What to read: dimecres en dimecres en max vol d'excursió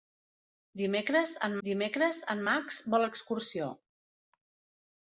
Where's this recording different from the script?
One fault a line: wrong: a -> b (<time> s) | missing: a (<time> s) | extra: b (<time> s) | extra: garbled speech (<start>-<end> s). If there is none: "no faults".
no faults